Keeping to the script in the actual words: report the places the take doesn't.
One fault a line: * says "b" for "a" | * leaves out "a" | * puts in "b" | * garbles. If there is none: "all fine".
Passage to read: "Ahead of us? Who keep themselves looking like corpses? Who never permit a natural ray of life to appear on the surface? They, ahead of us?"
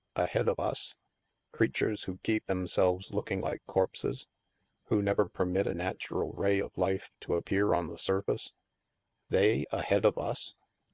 * puts in "Creatures"